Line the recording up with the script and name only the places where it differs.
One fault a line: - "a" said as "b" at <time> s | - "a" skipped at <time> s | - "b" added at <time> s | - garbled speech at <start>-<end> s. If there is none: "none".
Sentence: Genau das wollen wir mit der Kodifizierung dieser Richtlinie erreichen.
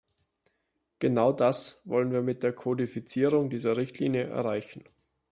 none